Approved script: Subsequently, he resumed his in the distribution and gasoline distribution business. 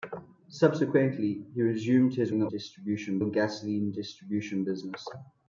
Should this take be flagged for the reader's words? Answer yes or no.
no